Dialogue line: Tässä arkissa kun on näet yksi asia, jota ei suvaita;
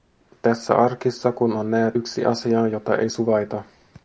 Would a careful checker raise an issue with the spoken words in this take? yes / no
no